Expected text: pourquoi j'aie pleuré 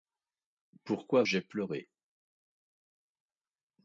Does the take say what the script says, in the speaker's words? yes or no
yes